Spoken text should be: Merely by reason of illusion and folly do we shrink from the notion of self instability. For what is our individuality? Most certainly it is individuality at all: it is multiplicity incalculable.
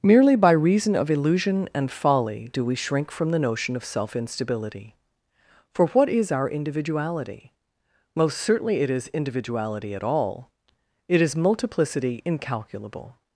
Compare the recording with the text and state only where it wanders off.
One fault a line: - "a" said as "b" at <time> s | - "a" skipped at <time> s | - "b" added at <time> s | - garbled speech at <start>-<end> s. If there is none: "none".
none